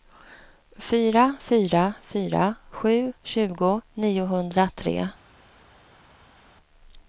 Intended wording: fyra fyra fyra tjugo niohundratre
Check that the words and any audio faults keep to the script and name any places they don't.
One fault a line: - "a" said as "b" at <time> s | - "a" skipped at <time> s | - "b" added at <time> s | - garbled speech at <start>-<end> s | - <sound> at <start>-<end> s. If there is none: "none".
- "sju" added at 2.7 s